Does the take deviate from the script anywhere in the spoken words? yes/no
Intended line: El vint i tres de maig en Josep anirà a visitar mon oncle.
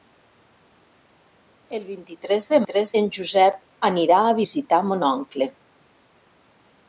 yes